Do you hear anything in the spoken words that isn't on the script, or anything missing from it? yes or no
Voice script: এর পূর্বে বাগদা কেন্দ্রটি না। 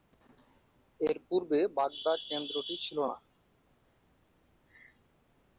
yes